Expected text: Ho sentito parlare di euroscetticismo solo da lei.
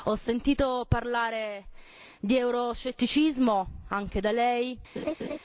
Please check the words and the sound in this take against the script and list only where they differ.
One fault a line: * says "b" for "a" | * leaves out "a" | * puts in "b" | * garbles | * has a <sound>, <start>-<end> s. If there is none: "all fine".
* says "anche" for "solo"
* has a laugh, 5.0-5.4 s